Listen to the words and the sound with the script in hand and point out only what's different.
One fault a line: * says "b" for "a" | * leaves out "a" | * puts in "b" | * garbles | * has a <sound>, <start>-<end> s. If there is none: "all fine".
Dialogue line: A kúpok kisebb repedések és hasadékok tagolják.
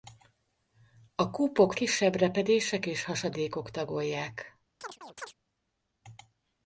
* has a chirp, 4.8-5.3 s